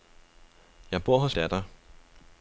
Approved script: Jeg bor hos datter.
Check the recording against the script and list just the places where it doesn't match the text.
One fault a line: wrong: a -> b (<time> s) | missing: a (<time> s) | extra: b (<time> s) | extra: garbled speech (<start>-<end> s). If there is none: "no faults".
no faults